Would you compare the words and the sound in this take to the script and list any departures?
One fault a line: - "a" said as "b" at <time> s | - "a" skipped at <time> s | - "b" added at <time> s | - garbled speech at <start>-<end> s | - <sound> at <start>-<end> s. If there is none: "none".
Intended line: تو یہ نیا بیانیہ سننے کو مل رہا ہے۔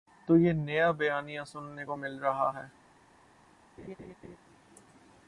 - laugh at 3.8-4.4 s